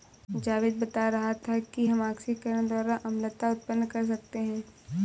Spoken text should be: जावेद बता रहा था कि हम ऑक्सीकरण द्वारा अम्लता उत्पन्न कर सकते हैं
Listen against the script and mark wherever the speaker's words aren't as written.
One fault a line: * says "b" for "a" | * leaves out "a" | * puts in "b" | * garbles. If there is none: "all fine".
all fine